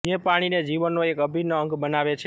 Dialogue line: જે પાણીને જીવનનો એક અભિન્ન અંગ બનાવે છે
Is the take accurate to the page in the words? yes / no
yes